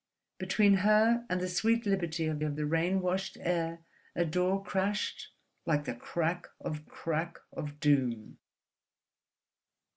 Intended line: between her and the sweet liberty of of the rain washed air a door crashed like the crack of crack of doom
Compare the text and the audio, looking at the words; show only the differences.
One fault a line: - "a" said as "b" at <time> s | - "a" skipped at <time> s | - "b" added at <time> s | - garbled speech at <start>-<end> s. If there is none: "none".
none